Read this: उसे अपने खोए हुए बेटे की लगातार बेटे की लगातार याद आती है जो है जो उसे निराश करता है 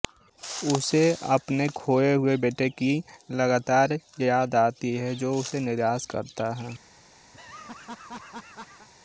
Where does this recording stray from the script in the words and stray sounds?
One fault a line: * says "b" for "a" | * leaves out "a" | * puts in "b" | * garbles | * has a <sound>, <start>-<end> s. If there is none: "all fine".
* leaves out "बेटे की लगातार"
* leaves out "है जो"
* has a laugh, 7.3-8.9 s